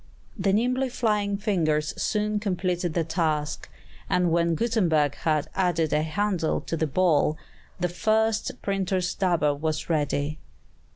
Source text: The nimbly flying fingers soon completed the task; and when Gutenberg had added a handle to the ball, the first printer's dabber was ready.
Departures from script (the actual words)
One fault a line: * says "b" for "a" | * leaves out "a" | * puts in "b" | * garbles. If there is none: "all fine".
all fine